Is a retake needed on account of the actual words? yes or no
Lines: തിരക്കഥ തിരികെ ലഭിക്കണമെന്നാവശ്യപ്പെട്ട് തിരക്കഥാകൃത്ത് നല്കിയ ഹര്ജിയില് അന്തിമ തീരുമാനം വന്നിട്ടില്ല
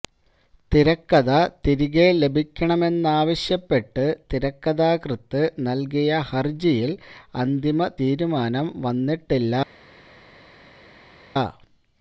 no